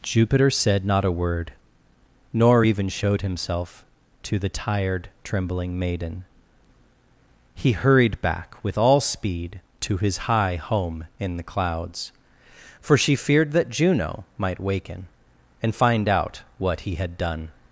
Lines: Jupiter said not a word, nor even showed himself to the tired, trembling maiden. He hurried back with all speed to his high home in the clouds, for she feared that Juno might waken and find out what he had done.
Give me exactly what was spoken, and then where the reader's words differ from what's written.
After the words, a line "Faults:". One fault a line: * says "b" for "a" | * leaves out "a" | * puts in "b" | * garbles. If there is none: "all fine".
Jupiter said not a word, nor even showed himself to the tired, trembling maiden. He hurried back with all speed to his high home in the clouds, for she feared that Juno might waken and find out what he had done.
Faults:
all fine